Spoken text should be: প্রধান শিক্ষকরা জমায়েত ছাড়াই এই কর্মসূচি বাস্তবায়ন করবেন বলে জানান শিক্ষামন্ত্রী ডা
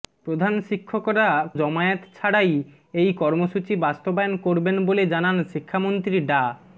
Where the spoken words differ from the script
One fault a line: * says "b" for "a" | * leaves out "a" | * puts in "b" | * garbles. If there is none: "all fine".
all fine